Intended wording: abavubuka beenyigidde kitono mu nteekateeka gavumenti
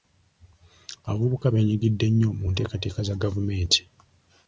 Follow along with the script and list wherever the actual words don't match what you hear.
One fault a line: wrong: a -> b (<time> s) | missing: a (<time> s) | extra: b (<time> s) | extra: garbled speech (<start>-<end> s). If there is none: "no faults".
wrong: kitono -> nnyo (2.1 s)
extra: za (3.1 s)